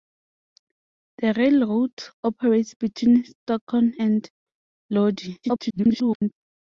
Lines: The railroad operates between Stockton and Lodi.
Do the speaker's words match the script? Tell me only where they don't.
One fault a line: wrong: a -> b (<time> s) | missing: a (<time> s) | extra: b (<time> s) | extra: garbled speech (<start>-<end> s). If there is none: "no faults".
extra: garbled speech (5.4-6.3 s)